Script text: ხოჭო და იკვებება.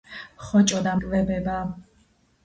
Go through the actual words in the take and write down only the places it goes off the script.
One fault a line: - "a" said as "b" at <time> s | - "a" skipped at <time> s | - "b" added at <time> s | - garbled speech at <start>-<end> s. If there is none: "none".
none